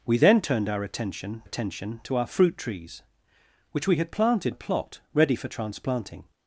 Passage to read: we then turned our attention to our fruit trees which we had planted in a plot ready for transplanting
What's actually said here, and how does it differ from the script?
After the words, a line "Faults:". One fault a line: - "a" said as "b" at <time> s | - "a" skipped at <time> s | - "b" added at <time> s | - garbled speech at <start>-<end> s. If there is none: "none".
we then turned our attention attention to our fruit trees which we had planted a plot ready for transplanting
Faults:
- "attention" added at 1.4 s
- "in" skipped at 4.5 s